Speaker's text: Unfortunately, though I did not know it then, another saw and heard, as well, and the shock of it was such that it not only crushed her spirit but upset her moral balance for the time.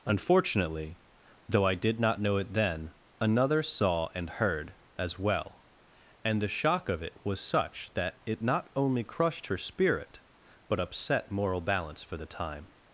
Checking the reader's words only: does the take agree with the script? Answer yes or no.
no